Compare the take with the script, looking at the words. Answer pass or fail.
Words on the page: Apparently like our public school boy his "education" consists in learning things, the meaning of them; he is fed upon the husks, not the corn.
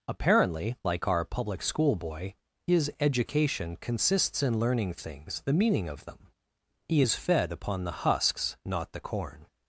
pass